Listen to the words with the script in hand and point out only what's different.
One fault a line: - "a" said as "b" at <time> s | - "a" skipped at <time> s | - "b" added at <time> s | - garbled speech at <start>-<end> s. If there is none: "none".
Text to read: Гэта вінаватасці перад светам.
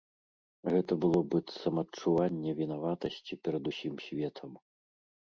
- "было быццам адчуванне" added at 1.0 s
- "усім" added at 3.7 s